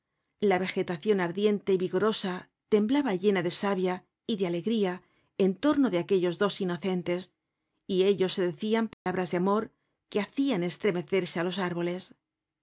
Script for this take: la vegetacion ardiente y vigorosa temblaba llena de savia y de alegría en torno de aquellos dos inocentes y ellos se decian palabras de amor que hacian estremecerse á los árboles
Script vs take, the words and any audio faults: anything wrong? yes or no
yes